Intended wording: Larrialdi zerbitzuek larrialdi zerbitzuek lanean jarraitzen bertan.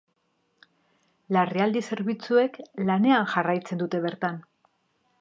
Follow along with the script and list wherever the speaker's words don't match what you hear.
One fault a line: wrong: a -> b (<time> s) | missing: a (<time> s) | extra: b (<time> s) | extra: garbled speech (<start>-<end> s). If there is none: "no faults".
missing: larrialdi zerbitzuek (2.6 s)
extra: dute (3.9 s)